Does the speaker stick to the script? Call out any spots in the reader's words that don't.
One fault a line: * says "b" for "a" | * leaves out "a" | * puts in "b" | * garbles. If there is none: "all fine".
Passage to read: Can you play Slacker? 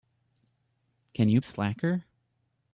* leaves out "play"